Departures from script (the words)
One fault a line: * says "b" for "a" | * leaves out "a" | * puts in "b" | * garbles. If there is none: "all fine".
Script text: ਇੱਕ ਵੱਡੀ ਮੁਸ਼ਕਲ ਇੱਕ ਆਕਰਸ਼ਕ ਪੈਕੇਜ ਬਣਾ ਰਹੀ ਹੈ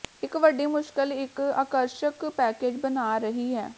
all fine